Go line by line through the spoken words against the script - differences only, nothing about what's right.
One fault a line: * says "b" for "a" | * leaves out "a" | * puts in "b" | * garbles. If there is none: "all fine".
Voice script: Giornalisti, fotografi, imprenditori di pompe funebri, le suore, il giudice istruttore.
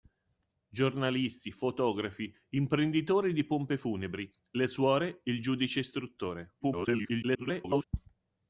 * garbles